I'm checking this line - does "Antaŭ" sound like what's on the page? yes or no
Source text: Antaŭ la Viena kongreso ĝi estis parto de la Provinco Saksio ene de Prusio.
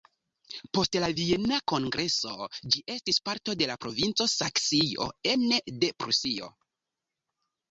no